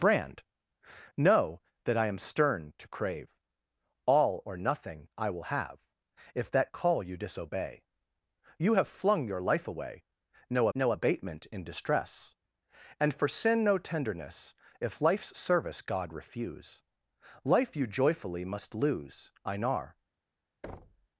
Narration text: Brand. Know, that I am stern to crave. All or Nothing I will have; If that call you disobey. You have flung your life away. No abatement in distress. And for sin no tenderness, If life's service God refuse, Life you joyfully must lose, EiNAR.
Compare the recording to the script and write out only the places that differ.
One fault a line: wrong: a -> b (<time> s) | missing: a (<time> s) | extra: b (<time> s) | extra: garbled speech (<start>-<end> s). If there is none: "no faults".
extra: no (10.7 s)